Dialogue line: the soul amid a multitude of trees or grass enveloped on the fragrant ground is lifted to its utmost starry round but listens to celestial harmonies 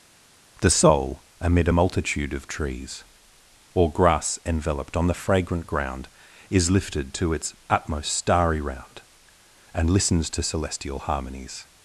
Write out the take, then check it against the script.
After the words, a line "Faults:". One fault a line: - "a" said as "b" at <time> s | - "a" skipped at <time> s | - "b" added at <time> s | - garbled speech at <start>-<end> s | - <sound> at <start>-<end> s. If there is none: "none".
the soul amid a multitude of trees or grass enveloped on the fragrant ground is lifted to its utmost starry round and listens to celestial harmonies
Faults:
- "but" said as "and" at 9.7 s